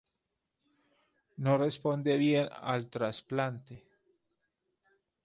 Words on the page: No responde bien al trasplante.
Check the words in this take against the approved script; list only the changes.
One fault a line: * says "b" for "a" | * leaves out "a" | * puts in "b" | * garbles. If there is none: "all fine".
all fine